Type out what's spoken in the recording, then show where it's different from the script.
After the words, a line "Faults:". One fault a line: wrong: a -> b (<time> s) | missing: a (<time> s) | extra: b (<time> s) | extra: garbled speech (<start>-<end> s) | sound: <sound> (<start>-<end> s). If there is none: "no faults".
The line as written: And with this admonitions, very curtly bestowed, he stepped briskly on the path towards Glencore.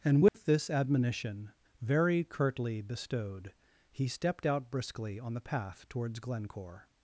And with this admonition, very curtly bestowed, he stepped out briskly on the path towards Glencore.
Faults:
sound: dropout (0.3-0.3 s)
wrong: admonitions -> admonition (0.7 s)
extra: out (4.5 s)